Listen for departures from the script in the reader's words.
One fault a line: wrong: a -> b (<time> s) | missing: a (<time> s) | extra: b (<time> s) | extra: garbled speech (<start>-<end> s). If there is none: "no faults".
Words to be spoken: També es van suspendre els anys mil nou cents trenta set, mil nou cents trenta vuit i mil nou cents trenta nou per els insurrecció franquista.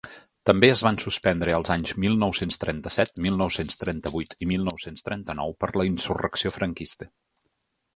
wrong: els -> la (5.8 s)